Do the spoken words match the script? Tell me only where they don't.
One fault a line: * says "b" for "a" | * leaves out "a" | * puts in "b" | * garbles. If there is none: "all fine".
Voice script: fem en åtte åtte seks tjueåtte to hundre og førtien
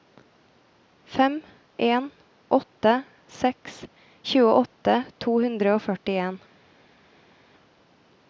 * leaves out "åtte"